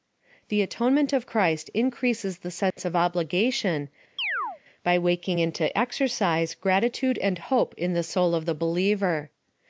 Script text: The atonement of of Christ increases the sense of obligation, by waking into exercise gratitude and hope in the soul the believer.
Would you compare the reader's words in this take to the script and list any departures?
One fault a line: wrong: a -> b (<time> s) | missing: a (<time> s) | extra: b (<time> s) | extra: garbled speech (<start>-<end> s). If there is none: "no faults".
missing: of (1.3 s)
extra: of (8.3 s)